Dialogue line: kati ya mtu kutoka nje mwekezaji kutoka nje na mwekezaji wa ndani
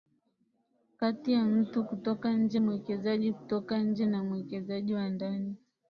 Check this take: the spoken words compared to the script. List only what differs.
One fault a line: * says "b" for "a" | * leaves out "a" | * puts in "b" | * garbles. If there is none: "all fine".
all fine